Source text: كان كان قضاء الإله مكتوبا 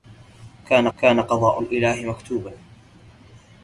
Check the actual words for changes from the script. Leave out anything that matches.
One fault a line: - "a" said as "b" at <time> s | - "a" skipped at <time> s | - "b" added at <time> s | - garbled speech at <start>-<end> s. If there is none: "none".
none